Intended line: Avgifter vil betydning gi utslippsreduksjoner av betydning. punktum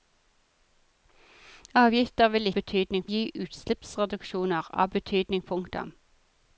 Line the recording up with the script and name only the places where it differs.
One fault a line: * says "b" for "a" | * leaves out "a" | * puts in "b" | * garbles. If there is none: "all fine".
all fine